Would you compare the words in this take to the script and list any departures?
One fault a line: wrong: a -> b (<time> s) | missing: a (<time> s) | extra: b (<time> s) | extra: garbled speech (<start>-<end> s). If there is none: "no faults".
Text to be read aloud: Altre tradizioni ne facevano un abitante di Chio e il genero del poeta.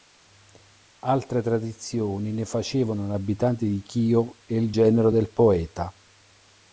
no faults